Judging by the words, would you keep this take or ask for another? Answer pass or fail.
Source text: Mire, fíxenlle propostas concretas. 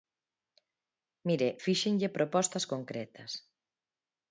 pass